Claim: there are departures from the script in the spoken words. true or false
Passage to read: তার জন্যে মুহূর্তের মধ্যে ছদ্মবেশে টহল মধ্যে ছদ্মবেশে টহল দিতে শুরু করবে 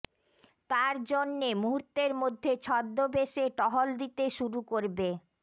true